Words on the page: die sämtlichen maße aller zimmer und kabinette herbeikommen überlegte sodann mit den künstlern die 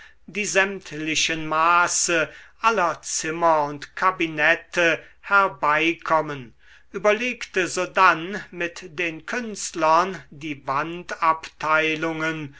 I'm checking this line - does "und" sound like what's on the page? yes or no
yes